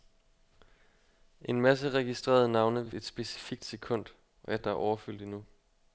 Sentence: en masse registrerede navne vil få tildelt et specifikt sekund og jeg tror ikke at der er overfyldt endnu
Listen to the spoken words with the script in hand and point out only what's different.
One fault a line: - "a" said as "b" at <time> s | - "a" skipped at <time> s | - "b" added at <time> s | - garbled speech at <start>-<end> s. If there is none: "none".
- "få tildelt" skipped at 2.9 s
- "tror ikke" skipped at 4.6 s